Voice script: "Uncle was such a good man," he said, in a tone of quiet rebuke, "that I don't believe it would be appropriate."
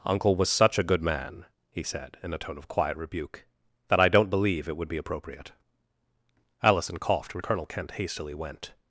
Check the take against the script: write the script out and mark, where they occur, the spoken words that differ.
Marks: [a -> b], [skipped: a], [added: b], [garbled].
"Uncle was such a good man," he said, in a tone of quiet rebuke, "that I don't believe it would be appropriate." [added: Allison coughed and Colonel Kent hastily went]